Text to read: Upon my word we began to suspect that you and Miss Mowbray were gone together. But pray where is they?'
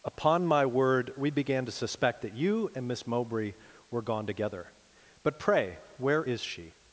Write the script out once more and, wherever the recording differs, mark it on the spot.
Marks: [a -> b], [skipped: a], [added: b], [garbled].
Upon my word we began to suspect that you and Miss Mowbray were gone together. But pray where is [they?' -> she]